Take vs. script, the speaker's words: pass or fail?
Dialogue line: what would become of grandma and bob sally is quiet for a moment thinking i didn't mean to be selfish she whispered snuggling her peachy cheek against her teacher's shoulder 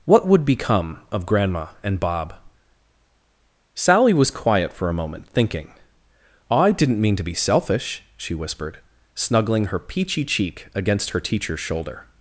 fail